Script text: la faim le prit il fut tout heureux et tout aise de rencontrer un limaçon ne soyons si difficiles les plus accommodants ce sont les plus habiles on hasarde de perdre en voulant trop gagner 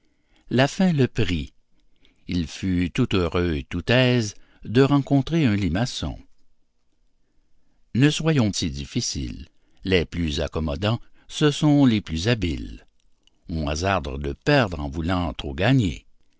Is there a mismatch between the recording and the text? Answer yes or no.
no